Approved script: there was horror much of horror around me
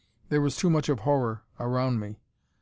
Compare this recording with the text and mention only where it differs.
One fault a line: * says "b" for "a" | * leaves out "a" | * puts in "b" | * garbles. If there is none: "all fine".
* says "too" for "horror"